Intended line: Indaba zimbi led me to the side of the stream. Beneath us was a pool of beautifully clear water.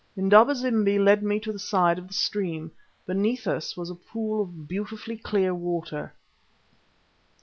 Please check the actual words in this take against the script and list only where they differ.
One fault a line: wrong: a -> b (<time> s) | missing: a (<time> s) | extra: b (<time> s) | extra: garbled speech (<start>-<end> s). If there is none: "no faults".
no faults